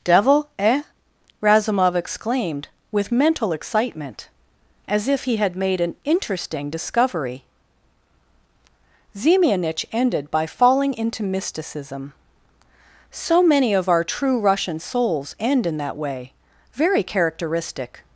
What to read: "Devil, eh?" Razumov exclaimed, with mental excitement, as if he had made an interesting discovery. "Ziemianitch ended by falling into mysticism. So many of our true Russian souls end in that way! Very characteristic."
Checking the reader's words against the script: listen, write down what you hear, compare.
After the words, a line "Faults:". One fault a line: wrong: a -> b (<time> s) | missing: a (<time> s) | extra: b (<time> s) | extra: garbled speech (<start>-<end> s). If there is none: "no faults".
"Devil, eh?" Razumov exclaimed, with mental excitement, as if he had made an interesting discovery. "Ziemianitch ended by falling into mysticism. So many of our true Russian souls end in that way! Very characteristic."
Faults:
no faults